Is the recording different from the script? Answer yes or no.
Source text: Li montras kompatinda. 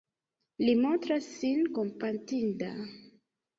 yes